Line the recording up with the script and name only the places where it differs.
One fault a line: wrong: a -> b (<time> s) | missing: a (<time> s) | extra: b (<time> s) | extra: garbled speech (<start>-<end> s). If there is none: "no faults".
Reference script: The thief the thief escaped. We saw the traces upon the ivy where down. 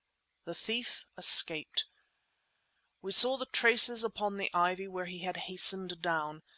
missing: the thief (1.1 s)
extra: he had hastened (5.1 s)